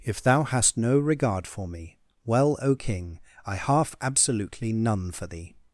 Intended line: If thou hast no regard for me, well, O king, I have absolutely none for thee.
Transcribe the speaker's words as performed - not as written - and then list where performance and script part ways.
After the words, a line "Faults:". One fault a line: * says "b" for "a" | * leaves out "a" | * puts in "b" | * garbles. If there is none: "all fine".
If thou hast no regard for me, well, O king, I half absolutely none for thee.
Faults:
* says "half" for "have"